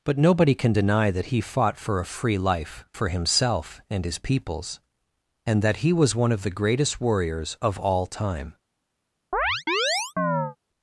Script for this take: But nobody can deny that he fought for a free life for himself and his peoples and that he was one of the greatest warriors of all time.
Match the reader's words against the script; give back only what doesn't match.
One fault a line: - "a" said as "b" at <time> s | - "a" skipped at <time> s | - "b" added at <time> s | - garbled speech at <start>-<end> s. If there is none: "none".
none